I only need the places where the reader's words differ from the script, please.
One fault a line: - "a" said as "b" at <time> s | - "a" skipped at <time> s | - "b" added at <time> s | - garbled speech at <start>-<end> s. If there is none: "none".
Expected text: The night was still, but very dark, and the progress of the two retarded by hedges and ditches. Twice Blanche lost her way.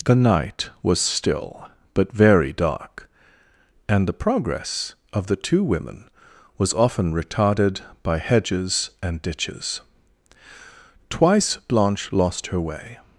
- "women was often" added at 5.6 s